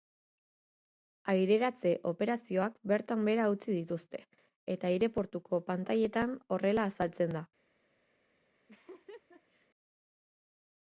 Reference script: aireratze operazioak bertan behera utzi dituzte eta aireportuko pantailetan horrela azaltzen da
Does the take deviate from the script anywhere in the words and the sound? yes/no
yes